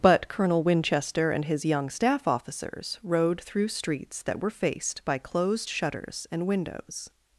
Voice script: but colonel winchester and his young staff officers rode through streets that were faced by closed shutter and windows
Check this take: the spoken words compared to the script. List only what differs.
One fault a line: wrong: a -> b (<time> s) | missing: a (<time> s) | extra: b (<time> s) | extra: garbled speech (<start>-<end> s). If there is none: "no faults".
wrong: shutter -> shutters (5.7 s)